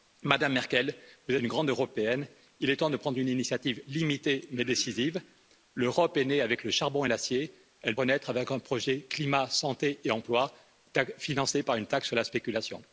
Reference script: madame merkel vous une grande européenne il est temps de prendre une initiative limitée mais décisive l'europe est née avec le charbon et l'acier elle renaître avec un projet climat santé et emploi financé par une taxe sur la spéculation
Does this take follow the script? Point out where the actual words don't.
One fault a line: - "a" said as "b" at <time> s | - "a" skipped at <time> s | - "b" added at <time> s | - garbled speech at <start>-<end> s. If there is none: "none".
none